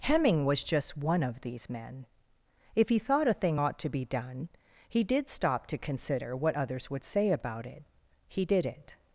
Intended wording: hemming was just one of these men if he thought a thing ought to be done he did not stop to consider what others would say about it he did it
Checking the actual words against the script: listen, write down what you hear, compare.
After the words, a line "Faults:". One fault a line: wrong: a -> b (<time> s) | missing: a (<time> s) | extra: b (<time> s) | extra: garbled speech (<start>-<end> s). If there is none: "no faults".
hemming was just one of these men if he thought a thing ought to be done he did stop to consider what others would say about it he did it
Faults:
missing: not (5.3 s)